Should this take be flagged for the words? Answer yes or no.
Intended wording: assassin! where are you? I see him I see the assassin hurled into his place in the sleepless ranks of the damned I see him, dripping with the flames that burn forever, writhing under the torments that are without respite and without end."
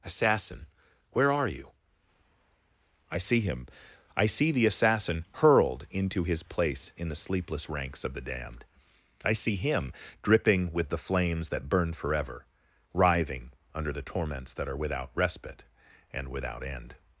no